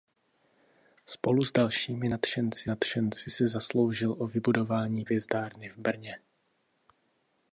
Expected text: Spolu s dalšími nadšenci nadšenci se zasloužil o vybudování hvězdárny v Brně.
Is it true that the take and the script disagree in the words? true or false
false